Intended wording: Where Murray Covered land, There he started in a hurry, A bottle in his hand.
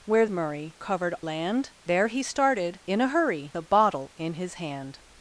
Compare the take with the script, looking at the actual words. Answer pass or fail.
pass